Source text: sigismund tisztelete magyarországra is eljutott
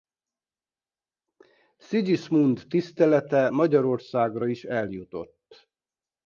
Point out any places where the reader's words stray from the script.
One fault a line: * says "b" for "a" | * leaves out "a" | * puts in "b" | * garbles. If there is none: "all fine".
all fine